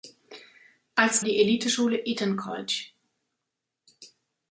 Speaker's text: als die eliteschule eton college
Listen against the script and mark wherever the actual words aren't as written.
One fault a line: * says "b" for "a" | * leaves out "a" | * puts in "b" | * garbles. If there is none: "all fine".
all fine